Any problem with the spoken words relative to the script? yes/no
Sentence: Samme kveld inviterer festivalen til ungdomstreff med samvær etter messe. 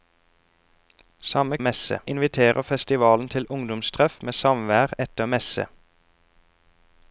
yes